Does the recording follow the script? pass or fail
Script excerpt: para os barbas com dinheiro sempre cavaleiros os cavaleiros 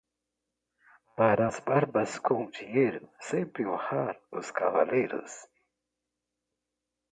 fail